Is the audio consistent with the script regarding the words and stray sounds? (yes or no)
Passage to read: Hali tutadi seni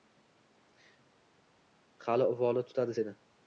no